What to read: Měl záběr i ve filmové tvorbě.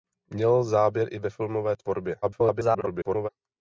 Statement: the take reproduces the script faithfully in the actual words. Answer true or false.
false